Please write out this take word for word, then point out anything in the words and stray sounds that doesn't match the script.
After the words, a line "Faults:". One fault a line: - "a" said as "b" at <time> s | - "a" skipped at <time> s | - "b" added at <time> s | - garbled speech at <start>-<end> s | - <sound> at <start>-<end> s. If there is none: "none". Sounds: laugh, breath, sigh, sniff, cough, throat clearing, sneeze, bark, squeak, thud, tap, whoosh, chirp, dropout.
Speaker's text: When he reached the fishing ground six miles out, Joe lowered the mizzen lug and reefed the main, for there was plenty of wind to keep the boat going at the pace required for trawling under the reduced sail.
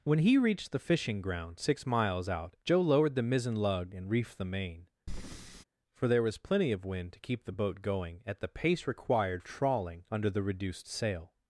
When he reached the fishing ground six miles out, Joe lowered the mizzen lug and reefed the main, for there was plenty of wind to keep the boat going at the pace required trawling under the reduced sail.
Faults:
- breath at 5.1-5.6 s
- "for" skipped at 9.4 s